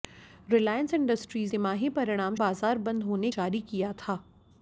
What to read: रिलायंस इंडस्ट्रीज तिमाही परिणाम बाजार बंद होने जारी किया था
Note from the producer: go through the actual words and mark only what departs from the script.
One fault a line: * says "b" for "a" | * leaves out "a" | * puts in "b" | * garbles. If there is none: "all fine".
all fine